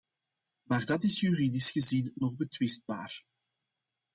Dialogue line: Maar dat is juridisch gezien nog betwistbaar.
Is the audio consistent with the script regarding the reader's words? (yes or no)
yes